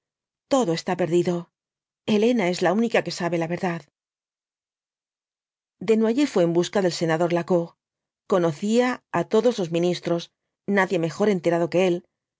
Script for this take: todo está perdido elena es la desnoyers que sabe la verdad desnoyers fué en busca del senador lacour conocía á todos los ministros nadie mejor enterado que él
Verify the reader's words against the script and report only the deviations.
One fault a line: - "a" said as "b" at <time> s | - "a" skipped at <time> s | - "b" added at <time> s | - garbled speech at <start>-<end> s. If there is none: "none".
- "desnoyers" said as "única" at 2.8 s